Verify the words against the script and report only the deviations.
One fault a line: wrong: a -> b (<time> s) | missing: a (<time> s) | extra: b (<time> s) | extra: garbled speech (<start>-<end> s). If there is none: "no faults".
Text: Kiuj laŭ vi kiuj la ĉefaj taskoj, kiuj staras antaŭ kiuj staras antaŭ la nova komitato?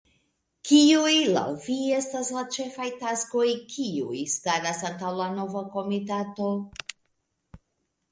wrong: kiuj -> estas (2.0 s)
missing: kiuj staras antaŭ (5.1 s)